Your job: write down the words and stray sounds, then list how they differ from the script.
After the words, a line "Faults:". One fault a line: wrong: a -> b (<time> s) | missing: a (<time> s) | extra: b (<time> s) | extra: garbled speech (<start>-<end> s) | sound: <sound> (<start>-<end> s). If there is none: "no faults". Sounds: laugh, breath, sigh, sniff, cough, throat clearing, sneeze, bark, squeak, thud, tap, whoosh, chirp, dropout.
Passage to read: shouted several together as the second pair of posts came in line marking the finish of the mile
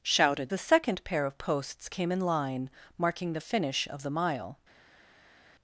shouted the second pair of posts came in line marking the finish of the mile
Faults:
missing: several together as (0.5 s)